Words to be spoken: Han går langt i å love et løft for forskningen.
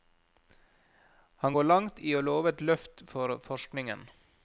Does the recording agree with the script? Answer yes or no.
yes